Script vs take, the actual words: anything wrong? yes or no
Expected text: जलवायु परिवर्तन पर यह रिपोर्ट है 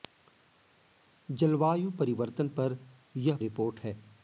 no